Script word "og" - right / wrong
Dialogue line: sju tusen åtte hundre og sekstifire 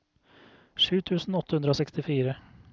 right